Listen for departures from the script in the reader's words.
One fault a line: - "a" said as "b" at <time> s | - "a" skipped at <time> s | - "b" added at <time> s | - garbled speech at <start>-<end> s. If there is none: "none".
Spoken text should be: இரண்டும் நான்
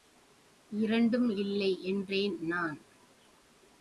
- "இல்லை என்றேன்" added at 1.4 s